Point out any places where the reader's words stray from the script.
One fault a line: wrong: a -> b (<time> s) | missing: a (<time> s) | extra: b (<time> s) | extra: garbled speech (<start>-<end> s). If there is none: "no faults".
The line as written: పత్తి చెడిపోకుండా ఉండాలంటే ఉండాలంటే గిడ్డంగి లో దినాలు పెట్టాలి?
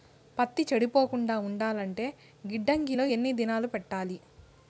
missing: ఉండాలంటే (2.0 s)
extra: ఎన్ని (3.1 s)